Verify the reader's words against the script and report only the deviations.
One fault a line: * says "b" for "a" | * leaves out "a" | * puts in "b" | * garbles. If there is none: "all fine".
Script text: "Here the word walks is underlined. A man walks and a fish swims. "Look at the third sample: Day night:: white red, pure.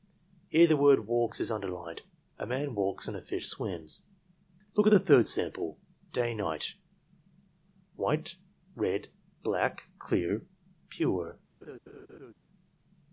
* puts in "black clear"